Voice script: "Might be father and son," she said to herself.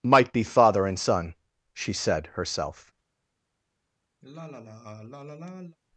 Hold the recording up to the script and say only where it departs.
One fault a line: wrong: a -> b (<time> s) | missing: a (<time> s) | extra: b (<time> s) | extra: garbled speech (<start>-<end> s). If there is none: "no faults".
missing: to (2.3 s)